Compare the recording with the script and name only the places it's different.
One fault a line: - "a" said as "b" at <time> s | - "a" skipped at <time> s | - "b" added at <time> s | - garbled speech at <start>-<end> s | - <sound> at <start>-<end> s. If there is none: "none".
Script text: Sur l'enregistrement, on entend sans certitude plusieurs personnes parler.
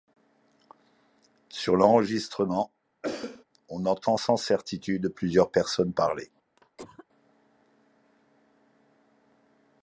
- cough at 3.0-3.4 s
- cough at 6.6-7.1 s